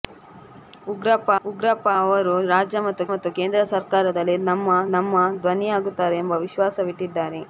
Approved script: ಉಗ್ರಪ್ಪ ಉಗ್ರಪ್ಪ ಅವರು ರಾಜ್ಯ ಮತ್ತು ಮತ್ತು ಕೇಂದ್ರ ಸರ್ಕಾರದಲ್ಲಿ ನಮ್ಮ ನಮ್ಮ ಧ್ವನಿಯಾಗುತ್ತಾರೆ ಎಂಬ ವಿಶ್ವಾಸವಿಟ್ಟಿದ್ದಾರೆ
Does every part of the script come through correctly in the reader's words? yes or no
yes